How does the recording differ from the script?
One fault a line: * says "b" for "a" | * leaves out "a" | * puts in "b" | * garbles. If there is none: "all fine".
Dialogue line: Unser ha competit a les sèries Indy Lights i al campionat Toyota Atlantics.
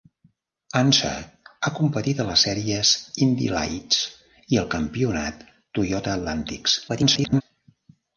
* garbles